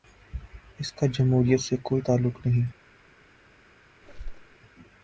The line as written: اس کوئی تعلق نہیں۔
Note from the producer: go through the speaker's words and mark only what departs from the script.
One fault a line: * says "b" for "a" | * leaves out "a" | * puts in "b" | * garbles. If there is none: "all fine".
* puts in "کا جمہوریت سے"